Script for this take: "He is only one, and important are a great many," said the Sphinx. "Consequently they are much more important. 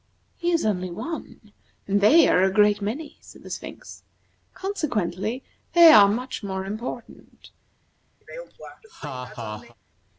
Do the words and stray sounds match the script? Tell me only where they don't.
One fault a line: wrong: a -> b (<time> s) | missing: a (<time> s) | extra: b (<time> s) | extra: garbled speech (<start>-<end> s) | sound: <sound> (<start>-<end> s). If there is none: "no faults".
wrong: important -> they (2.0 s)
sound: laugh (8.2-9.8 s)